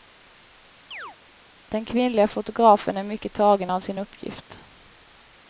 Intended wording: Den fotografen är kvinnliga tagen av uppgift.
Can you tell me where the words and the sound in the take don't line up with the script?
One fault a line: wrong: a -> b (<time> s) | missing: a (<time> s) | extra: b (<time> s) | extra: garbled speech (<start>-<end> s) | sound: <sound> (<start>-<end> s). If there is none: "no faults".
sound: chirp (0.9-1.2 s)
extra: kvinnliga (1.9 s)
wrong: kvinnliga -> mycket (3.0 s)
extra: sin (3.8 s)